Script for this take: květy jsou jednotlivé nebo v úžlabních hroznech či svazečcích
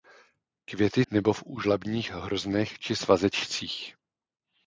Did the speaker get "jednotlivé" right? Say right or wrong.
wrong